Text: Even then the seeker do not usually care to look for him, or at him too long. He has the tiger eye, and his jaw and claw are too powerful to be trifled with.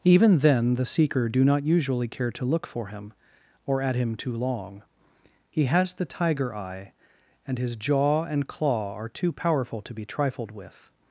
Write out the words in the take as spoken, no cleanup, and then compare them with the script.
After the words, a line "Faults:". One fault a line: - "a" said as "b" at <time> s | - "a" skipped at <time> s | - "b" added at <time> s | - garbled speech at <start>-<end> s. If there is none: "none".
Even then the seeker do not usually care to look for him, or at him too long. He has the tiger eye, and his jaw and claw are too powerful to be trifled with.
Faults:
none